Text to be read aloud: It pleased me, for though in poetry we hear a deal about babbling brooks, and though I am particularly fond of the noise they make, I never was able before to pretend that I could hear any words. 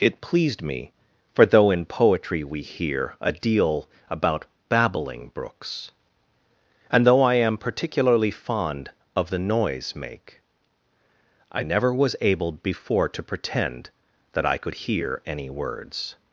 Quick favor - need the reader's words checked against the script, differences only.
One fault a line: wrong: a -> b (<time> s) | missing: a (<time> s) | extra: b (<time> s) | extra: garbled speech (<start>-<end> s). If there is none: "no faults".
missing: they (9.9 s)